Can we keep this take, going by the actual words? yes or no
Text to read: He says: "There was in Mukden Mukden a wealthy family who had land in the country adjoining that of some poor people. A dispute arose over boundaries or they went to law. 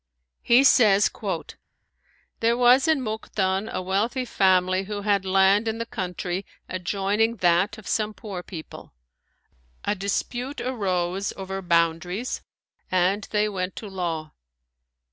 no